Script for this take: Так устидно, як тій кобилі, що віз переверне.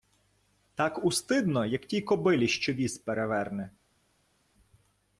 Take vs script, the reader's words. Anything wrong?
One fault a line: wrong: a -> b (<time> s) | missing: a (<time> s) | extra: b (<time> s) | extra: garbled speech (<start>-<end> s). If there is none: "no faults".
no faults